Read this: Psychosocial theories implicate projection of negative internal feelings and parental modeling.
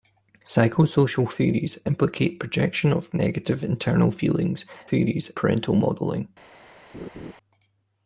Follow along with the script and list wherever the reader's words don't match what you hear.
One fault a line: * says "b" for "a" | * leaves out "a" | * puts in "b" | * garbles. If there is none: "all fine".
* says "theories" for "and"